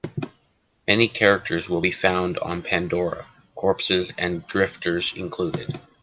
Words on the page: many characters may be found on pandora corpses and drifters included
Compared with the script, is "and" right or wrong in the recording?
right